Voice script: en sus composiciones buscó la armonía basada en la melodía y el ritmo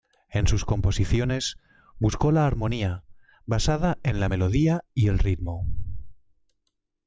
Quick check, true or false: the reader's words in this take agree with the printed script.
true